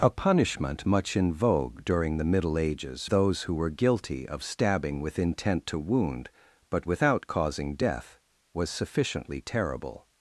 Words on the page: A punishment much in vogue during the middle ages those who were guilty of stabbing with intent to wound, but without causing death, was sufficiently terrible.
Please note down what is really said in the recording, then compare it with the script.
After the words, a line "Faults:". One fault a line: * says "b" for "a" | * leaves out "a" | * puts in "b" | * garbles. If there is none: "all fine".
A punishment much in vogue during the middle ages those who were guilty of stabbing with intent to wound, but without causing death, was sufficiently terrible.
Faults:
all fine